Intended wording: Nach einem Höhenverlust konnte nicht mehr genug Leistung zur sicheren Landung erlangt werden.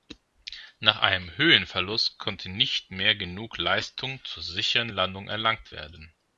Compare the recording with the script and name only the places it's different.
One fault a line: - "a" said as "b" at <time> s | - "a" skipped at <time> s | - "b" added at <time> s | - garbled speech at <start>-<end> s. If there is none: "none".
none